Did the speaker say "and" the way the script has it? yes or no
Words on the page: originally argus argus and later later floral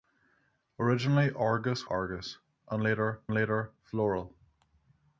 yes